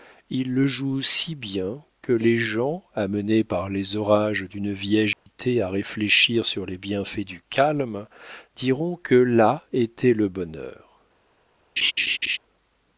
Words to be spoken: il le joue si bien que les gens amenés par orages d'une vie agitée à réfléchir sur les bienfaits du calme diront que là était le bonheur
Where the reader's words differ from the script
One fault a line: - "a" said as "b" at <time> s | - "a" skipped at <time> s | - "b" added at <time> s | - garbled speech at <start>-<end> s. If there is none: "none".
- "les" added at 3.7 s